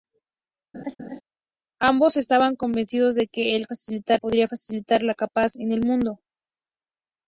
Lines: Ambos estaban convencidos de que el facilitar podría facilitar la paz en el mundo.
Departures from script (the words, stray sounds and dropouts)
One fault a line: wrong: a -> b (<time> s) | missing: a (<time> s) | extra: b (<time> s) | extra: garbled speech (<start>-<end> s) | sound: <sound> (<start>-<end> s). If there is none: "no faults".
sound: laugh (0.7-1.2 s)